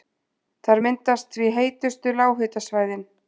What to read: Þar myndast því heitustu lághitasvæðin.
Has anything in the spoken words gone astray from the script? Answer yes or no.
no